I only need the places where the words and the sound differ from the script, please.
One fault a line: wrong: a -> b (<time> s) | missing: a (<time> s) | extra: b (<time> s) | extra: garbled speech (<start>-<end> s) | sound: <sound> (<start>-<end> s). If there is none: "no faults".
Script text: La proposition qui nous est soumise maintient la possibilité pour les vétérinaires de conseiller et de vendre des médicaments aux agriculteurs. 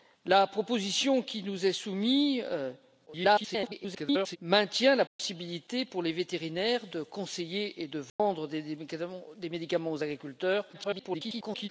extra: garbled speech (3.1-4.4 s)
sound: dropout (5.1-5.2 s)
sound: dropout (8.1-8.2 s)
extra: garbled speech (10.7-11.7 s)